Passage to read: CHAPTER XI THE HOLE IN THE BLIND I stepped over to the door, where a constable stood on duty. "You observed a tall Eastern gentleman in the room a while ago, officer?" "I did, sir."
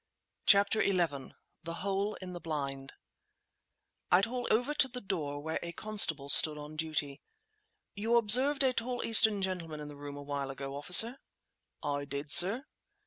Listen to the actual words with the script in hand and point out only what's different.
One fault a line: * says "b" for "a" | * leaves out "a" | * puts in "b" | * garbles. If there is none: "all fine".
* says "tall" for "stepped"